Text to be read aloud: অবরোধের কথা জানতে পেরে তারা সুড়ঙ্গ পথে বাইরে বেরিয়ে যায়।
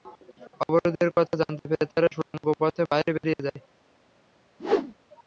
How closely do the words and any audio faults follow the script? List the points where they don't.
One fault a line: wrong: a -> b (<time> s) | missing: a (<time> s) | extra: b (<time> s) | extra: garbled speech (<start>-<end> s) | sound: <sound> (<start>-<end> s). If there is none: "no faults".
sound: dropout (2.2-2.3 s)
sound: whoosh (4.6-4.9 s)